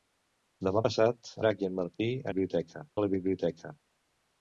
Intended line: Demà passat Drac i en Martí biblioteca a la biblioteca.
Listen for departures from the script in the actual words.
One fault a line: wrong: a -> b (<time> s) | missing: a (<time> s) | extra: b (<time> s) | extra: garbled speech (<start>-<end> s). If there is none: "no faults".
no faults